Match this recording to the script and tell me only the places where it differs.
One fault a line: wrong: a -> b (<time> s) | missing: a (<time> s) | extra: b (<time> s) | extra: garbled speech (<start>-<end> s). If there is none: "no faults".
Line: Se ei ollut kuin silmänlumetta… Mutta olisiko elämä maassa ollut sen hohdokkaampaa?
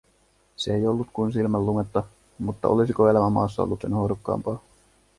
no faults